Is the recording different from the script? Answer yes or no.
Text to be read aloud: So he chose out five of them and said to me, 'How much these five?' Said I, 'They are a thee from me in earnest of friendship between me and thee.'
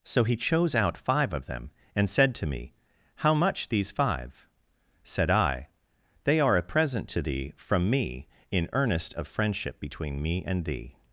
yes